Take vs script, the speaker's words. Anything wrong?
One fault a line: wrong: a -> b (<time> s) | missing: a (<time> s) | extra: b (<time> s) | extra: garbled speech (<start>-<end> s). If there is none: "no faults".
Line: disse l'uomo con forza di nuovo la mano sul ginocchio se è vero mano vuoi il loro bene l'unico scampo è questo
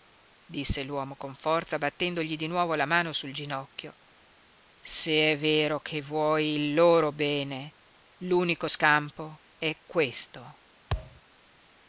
extra: battendogli (1.8 s)
wrong: mano -> che (5.8 s)